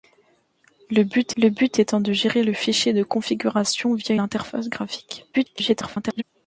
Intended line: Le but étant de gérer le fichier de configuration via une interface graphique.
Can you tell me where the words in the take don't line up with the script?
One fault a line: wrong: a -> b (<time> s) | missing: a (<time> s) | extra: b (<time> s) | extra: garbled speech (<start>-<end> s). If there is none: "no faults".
extra: le but (1.4 s)
missing: une (4.1 s)
extra: garbled speech (5.3-6.2 s)